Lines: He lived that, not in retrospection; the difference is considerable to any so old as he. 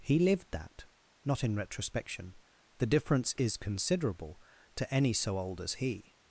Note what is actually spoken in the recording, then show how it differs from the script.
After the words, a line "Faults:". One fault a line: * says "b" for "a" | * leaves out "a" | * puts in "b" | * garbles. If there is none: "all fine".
He lived that, not in retrospection; the difference is considerable to any so old as he.
Faults:
all fine